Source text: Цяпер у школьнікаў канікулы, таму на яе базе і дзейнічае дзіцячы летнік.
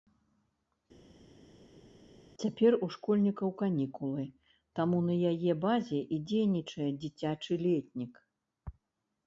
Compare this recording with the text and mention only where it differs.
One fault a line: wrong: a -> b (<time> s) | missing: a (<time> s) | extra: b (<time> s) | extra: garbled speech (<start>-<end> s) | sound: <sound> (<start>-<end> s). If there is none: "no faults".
no faults